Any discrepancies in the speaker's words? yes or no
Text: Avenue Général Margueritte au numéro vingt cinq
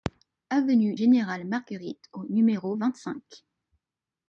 no